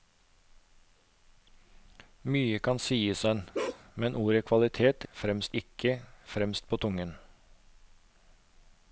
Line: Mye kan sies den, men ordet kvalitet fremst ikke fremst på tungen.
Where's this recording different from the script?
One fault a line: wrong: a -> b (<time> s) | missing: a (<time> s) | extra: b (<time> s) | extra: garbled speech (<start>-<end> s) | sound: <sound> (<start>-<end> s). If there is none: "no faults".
sound: bark (3.5-3.8 s)